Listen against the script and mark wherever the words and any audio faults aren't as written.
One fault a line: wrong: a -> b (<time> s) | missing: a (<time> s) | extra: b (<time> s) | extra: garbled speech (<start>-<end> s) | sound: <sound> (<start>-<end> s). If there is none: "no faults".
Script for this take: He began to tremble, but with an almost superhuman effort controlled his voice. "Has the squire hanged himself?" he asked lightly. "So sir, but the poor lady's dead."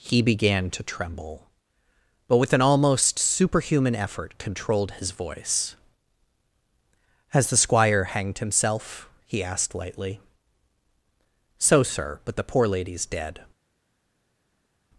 no faults